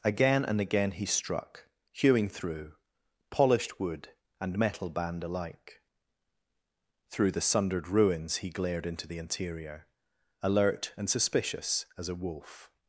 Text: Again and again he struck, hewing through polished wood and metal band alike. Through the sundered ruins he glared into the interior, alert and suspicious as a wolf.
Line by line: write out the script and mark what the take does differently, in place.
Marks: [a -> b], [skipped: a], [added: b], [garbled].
Again and again he struck, hewing through polished wood and metal band alike. Through the sundered ruins he glared into the interior, alert and suspicious as a wolf.